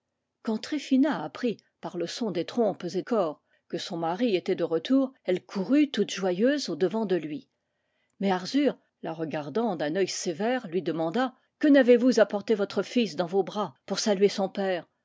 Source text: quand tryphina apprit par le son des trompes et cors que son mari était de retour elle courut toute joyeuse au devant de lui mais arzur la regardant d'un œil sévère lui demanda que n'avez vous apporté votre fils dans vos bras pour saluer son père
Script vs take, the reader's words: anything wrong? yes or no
no